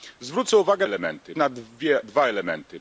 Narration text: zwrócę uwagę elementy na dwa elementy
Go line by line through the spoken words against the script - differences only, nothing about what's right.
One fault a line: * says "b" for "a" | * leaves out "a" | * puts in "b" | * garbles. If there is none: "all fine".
all fine